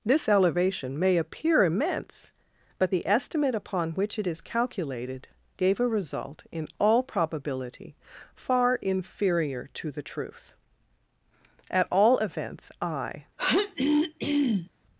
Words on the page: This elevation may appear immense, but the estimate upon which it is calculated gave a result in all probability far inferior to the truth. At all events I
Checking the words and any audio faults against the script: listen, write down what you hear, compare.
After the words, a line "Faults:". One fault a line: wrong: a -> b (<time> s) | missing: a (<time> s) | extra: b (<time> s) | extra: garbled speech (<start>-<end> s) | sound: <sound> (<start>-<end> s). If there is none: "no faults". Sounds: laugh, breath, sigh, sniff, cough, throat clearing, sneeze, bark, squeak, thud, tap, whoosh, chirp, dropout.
This elevation may appear immense, but the estimate upon which it is calculated gave a result in all probability far inferior to the truth. At all events I
Faults:
sound: throat clearing (13.4-14.7 s)